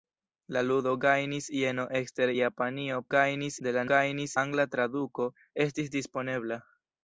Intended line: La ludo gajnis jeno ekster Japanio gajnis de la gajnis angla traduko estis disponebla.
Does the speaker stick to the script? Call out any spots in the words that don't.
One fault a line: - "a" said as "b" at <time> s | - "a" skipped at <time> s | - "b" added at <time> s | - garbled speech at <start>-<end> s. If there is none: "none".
none